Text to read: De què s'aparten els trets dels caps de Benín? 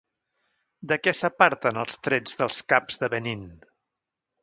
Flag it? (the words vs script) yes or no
no